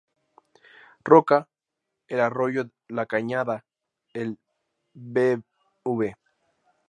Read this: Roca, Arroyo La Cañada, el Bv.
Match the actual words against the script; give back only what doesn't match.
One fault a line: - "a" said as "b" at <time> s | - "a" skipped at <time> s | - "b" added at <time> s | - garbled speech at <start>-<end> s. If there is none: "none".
- "el" added at 2.1 s